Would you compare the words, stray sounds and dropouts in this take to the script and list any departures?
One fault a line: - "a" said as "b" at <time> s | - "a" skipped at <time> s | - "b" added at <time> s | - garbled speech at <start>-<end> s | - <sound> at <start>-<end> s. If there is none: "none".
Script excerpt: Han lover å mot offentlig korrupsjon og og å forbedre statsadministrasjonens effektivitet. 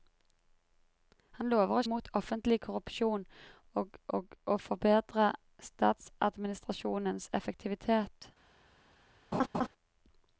- laugh at 9.3-9.7 s